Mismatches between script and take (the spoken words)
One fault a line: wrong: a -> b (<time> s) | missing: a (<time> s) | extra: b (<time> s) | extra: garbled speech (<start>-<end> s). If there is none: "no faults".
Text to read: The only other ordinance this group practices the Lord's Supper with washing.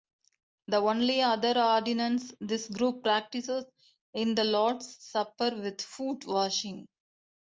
extra: is (4.2 s)
extra: foot (5.8 s)